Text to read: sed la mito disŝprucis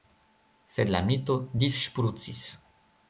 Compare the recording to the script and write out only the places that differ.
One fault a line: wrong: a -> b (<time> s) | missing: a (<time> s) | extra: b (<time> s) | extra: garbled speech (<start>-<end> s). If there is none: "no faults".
no faults